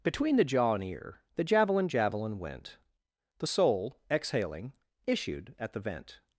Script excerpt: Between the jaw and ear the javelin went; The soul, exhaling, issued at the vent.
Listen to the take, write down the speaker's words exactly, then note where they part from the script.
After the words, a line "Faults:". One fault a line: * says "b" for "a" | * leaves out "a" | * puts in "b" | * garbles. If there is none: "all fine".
Between the jaw and ear the javelin javelin went; The soul, exhaling, issued at the vent.
Faults:
* puts in "javelin"